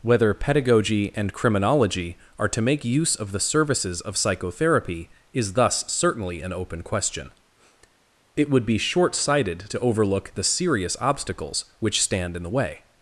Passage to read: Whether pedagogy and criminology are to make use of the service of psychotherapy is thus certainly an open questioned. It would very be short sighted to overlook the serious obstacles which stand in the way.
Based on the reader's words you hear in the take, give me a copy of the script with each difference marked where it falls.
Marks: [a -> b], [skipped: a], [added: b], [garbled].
Whether pedagogy and criminology are to make use of the [service -> services] of psychotherapy is thus certainly an open [questioned. -> question] It would [skipped: very] be short sighted to overlook the serious obstacles which stand in the way.